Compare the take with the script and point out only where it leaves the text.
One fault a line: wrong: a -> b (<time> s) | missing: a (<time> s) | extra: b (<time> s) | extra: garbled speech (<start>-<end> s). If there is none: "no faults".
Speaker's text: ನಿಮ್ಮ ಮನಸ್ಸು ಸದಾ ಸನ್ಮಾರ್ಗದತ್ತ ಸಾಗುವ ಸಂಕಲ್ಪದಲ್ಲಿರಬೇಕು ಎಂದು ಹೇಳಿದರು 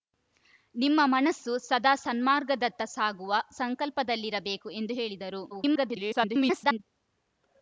extra: garbled speech (5.5-6.8 s)